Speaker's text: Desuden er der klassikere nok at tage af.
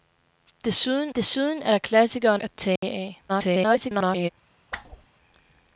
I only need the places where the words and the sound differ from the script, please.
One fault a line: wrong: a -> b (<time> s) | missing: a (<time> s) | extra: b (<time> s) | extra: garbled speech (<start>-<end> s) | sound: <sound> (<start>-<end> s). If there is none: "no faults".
extra: desuden (1.2 s)
missing: nok (2.4 s)
sound: dropout (2.8-2.8 s)
extra: garbled speech (3.3-4.3 s)
sound: whoosh (4.7-5.1 s)